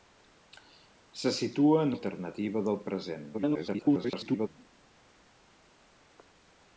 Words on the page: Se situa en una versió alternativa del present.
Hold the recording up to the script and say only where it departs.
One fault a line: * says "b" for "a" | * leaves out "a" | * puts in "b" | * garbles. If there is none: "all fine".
* leaves out "una versió"
* garbles